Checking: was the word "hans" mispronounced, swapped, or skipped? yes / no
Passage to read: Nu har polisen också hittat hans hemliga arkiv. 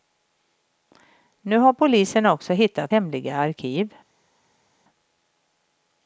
yes